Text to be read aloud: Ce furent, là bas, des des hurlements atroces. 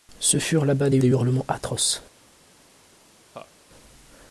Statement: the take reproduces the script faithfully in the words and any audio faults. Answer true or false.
false